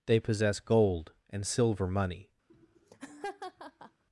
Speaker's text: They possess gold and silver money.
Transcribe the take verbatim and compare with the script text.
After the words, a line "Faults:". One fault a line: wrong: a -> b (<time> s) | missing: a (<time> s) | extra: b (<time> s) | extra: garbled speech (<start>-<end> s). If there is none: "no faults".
They possess gold and silver money.
Faults:
no faults